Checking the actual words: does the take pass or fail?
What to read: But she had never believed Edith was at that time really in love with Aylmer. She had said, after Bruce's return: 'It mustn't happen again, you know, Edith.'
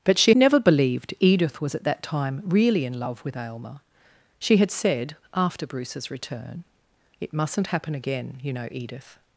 fail